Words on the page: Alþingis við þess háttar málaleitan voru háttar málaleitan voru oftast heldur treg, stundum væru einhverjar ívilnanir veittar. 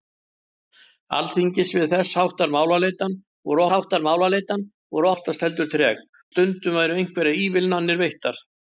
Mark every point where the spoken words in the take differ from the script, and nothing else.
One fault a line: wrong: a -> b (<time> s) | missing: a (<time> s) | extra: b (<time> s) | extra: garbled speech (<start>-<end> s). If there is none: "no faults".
no faults